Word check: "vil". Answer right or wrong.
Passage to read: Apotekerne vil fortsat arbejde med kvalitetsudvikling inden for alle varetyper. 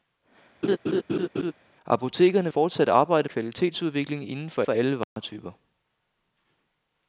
wrong